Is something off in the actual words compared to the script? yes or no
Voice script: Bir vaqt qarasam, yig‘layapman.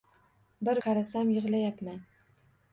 yes